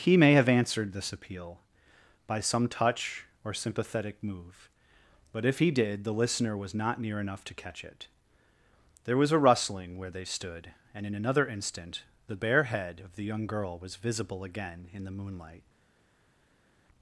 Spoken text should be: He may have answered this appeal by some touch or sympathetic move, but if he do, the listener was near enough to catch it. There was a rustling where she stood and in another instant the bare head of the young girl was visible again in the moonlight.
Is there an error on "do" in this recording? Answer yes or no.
yes